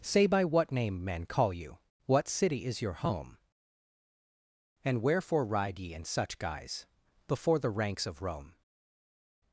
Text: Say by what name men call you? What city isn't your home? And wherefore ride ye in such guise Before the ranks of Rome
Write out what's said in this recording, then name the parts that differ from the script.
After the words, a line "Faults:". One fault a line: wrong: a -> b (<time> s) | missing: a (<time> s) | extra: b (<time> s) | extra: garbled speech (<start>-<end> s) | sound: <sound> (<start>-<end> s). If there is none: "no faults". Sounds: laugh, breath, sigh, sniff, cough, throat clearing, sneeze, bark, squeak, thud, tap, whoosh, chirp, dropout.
Say by what name men call you? What city is your home? And wherefore ride ye in such guise Before the ranks of Rome
Faults:
wrong: isn't -> is (2.6 s)